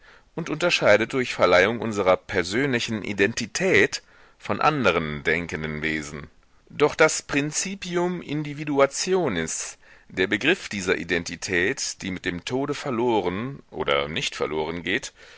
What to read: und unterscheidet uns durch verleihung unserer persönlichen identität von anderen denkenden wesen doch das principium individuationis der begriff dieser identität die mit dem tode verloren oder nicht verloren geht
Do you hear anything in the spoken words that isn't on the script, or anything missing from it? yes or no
yes